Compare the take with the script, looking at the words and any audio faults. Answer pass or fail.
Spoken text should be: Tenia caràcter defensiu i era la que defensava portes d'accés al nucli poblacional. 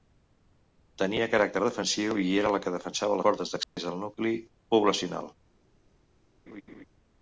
fail